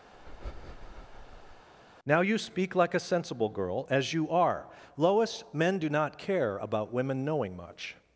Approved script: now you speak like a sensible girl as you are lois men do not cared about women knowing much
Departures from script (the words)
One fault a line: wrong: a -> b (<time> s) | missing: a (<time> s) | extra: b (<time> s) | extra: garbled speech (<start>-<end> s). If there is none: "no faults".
wrong: cared -> care (6.2 s)